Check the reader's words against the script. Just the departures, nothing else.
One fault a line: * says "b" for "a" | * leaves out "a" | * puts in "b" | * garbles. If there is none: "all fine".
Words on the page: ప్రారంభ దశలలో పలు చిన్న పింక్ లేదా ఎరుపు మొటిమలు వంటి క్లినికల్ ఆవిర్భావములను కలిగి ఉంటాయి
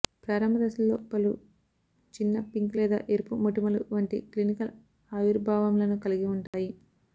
all fine